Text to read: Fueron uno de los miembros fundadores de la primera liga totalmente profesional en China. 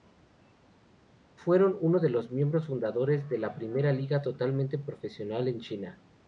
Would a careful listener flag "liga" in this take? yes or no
no